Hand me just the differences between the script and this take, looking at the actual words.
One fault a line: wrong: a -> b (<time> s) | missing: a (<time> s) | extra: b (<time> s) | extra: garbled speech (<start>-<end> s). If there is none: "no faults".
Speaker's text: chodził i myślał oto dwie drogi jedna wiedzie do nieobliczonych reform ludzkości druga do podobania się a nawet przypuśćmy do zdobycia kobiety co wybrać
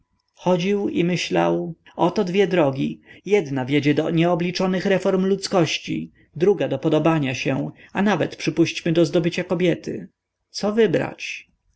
no faults